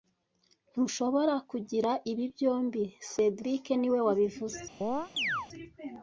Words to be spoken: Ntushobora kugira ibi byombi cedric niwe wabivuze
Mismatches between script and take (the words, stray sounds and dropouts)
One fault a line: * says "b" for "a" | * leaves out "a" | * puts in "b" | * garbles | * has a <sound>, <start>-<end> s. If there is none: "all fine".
* has a chirp, 4.8-5.5 s